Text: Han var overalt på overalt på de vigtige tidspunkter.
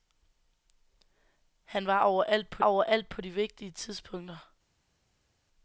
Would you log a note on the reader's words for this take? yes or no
no